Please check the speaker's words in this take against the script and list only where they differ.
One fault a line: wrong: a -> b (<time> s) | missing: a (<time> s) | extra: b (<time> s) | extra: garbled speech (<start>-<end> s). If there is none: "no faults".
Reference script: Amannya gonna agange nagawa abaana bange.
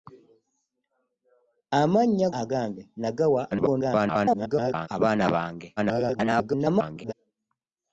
missing: gonna (2.3 s)
extra: garbled speech (3.5-4.9 s)
extra: garbled speech (5.8-7.1 s)